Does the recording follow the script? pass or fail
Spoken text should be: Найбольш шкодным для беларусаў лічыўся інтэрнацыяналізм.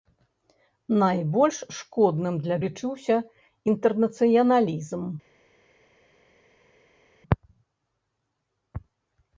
fail